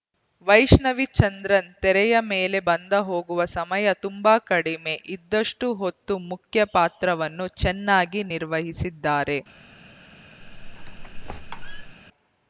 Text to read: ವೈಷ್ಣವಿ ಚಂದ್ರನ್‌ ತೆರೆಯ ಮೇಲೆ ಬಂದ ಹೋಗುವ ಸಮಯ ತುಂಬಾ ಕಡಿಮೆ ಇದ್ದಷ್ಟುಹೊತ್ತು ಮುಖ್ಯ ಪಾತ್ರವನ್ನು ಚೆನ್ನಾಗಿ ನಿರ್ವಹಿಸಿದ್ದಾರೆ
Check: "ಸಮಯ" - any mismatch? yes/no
no